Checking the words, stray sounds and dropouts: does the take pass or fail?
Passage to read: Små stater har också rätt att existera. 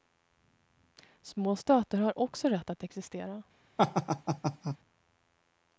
fail